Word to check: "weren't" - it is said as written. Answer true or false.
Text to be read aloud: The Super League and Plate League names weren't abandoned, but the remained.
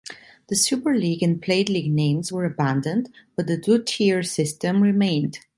false